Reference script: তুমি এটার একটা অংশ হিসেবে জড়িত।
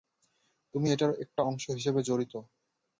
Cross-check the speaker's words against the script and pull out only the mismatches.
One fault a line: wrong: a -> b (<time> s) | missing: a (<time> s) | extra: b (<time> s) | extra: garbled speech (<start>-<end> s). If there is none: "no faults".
no faults